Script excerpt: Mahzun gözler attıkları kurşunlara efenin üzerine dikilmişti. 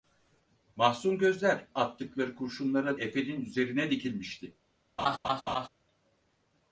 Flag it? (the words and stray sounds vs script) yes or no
yes